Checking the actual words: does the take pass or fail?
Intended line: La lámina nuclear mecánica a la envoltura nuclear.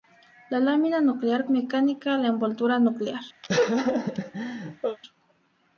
pass